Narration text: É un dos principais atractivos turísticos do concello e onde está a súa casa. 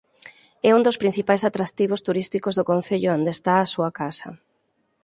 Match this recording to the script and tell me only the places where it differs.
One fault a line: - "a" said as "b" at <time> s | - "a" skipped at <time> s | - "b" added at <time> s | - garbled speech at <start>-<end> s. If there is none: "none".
none